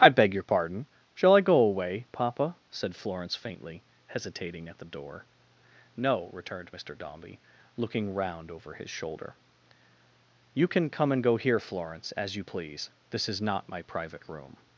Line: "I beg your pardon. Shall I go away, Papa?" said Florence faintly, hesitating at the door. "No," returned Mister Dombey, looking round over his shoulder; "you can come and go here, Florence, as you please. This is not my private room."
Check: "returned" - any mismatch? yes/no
no